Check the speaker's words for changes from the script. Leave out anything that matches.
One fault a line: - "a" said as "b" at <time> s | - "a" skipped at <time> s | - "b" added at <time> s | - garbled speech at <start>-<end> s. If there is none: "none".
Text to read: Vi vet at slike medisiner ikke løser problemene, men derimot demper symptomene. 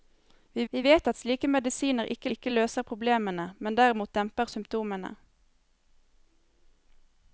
- "vi" added at 0.7 s
- "ikke" added at 2.3 s